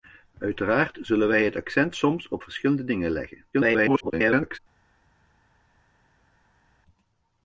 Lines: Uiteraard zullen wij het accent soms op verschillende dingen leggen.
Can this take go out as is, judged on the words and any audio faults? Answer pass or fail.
fail